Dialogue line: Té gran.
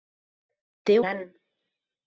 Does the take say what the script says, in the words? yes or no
yes